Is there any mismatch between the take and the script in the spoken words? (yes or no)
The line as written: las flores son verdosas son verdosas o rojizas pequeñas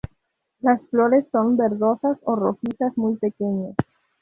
yes